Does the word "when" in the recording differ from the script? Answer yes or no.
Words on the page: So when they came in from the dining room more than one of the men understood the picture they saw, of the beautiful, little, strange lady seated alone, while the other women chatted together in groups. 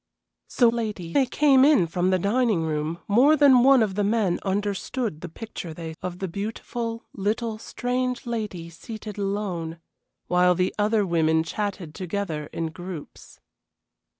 yes